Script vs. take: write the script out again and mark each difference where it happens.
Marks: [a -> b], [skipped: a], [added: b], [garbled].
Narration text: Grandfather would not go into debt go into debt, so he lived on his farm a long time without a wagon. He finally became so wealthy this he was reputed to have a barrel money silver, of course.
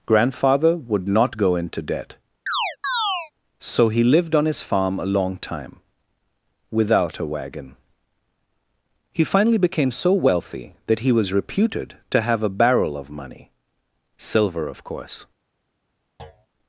Grandfather would not go into debt [skipped: go into debt,] so he lived on his farm a long time without a wagon. He finally became so wealthy [this -> that] he was reputed to have a barrel [added: of] money silver, of course.